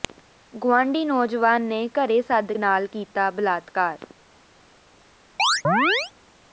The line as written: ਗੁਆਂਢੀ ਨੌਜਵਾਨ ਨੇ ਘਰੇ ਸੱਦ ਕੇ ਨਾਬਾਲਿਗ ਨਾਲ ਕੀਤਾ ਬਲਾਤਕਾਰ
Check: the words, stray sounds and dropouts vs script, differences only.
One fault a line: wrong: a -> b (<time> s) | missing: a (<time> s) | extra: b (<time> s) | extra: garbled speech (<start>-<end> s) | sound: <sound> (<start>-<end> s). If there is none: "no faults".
missing: ਕੇ ਨਾਬਾਲਿਗ (2.5 s)
sound: chirp (5.4-6.1 s)